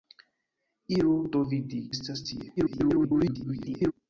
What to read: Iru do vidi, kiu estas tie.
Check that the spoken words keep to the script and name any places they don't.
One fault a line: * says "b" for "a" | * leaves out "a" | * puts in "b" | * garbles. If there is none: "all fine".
* leaves out "kiu"
* garbles